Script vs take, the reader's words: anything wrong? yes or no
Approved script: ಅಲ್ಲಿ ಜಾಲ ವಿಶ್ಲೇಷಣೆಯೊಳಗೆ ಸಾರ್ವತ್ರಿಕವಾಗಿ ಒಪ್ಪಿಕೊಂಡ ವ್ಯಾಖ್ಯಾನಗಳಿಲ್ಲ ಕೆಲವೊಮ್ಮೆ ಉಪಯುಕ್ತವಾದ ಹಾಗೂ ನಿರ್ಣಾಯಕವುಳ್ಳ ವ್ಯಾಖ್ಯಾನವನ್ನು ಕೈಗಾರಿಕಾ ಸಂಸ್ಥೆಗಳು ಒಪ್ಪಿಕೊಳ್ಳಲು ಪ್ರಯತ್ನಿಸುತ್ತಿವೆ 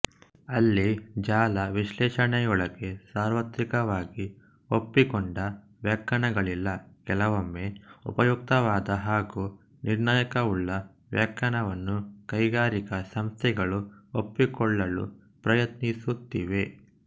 no